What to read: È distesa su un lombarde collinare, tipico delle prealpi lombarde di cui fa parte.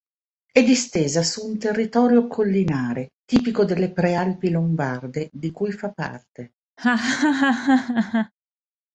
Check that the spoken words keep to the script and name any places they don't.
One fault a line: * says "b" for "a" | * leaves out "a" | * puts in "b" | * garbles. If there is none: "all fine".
* says "territorio" for "lombarde"